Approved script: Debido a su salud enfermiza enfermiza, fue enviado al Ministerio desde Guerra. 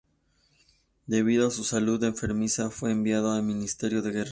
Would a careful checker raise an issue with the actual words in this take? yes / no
yes